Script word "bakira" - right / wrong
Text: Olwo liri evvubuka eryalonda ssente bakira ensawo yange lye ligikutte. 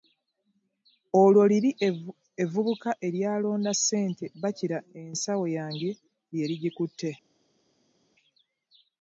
right